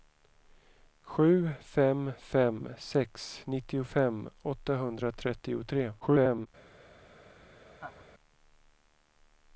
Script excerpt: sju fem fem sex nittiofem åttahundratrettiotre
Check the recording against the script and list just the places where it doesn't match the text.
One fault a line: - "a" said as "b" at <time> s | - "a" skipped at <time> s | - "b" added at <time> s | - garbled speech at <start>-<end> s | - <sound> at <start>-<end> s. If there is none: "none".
- garbled speech at 6.0-6.5 s
- laugh at 7.7-8.1 s